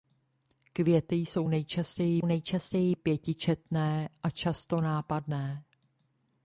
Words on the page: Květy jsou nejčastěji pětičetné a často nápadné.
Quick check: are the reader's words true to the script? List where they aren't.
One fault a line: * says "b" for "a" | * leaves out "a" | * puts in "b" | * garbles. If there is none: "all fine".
* puts in "nejčastěji"